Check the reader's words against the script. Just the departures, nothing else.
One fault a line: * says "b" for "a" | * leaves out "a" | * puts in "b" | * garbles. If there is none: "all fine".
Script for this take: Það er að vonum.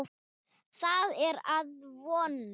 all fine